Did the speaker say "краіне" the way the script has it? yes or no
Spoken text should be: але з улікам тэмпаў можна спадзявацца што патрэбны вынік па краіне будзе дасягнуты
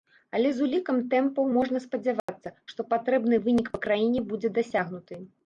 yes